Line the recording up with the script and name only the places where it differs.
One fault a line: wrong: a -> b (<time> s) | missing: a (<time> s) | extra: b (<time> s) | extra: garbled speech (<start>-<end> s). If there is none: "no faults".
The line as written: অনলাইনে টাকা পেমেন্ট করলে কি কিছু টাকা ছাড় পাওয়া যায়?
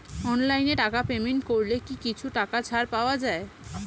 no faults